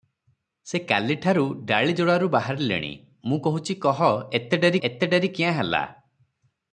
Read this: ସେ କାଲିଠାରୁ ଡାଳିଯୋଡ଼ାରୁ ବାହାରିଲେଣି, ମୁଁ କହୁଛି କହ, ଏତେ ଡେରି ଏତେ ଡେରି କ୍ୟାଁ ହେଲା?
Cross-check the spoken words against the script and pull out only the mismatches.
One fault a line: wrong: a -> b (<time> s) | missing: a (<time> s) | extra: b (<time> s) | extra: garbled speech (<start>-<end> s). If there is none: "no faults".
no faults